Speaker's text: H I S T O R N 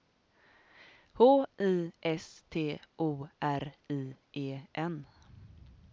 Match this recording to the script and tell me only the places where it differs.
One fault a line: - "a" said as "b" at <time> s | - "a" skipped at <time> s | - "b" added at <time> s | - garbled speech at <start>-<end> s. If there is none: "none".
- "I E" added at 3.9 s